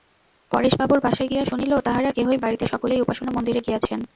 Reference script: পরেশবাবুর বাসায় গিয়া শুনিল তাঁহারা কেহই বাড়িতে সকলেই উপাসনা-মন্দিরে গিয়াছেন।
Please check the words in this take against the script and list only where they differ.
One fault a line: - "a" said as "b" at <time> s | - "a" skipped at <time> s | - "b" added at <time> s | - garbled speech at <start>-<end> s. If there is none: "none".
none